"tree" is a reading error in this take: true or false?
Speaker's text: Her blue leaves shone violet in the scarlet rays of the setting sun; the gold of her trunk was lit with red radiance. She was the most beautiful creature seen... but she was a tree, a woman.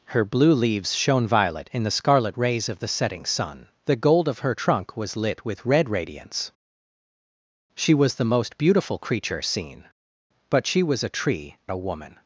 false